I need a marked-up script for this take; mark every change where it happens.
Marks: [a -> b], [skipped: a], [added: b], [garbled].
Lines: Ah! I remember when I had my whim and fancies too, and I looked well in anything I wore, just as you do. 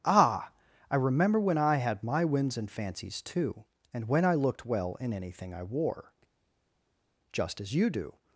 Ah! I remember when I had my [whim -> whims] and fancies too, and [added: when] I looked well in anything I wore, just as you do.